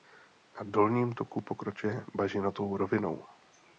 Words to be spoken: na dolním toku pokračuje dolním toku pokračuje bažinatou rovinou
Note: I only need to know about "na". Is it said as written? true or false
true